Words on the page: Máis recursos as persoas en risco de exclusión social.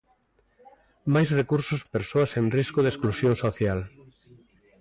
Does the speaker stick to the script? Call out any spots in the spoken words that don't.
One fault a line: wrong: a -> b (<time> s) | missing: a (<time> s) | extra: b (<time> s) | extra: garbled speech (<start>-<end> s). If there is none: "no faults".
no faults